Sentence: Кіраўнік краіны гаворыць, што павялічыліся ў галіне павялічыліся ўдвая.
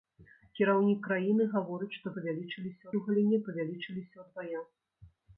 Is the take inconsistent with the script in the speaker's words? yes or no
no